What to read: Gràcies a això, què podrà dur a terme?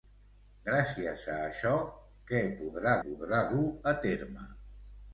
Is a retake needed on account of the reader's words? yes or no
yes